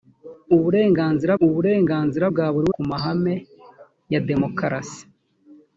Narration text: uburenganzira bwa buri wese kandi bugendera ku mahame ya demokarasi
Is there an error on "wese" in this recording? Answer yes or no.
yes